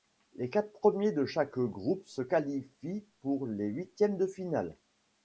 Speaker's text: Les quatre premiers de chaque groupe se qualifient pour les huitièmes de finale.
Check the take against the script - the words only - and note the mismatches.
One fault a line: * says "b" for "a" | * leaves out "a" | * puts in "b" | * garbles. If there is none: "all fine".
all fine